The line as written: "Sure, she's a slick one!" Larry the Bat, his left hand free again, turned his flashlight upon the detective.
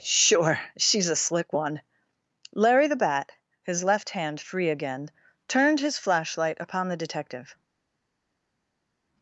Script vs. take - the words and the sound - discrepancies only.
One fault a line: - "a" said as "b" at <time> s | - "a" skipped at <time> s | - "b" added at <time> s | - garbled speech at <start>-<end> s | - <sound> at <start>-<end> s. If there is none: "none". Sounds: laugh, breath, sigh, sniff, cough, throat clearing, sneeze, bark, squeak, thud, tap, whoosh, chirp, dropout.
none